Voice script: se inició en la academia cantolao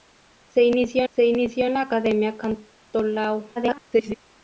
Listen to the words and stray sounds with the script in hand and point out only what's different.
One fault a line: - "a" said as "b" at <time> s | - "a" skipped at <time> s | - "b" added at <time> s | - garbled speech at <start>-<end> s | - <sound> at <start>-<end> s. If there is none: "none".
- "se inició" added at 1.1 s
- garbled speech at 3.6-4.1 s